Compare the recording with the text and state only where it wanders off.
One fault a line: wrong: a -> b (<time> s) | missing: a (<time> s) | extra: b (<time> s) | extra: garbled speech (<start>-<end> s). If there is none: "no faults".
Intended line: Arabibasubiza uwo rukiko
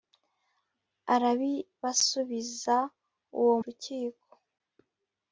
no faults